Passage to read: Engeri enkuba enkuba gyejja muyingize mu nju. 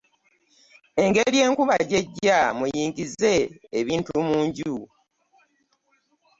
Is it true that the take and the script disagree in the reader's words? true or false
true